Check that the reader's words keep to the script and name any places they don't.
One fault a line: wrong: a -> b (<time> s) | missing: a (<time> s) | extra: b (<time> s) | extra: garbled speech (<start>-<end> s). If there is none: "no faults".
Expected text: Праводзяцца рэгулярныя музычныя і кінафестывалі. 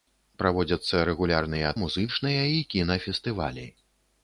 no faults